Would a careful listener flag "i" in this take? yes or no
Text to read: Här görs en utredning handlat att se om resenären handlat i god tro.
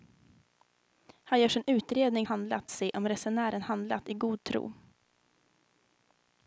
no